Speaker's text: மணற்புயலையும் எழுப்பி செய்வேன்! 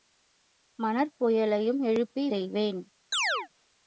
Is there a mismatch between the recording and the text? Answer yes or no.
no